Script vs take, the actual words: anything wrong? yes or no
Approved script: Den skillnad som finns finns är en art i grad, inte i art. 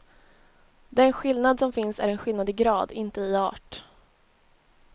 yes